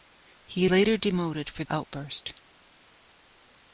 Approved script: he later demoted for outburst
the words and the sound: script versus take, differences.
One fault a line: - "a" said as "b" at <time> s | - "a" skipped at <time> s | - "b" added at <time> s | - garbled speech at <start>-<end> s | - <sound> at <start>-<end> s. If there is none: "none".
none